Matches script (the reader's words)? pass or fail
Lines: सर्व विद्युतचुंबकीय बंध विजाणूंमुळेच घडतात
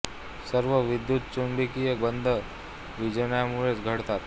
pass